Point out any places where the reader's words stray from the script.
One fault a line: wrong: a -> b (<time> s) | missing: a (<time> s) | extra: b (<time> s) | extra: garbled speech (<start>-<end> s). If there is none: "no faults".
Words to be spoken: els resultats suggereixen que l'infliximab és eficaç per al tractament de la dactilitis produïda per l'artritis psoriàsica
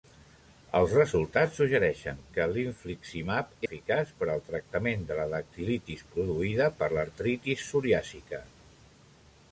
missing: és (3.5 s)